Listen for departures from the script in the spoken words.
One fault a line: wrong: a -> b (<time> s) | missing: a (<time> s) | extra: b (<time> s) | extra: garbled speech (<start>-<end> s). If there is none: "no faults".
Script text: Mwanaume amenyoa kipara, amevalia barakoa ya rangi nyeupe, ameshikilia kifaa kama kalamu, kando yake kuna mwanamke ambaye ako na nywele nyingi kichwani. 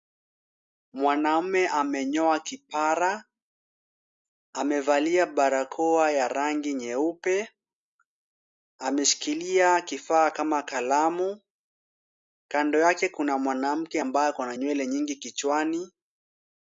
no faults